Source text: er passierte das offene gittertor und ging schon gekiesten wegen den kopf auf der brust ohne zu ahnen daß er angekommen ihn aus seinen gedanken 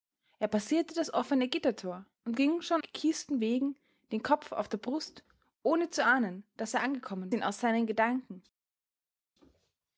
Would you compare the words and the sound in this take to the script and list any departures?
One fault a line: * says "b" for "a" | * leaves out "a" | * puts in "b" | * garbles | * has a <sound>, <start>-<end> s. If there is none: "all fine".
all fine